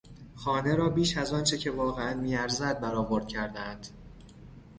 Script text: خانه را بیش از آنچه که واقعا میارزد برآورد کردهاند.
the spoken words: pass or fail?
pass